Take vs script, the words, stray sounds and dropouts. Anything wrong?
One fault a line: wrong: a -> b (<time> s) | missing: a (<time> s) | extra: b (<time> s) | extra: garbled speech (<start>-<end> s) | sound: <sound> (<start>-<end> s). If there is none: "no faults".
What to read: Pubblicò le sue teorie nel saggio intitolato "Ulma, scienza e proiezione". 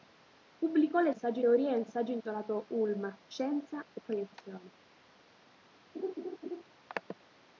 wrong: sue -> saggio (1.1 s)
sound: laugh (5.9-6.6 s)